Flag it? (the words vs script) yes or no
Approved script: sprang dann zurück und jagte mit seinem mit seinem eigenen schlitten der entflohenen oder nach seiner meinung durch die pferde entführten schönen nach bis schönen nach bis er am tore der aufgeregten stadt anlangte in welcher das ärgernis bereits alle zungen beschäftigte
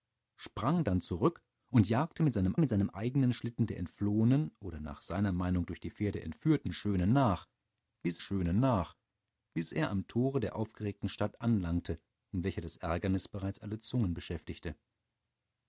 no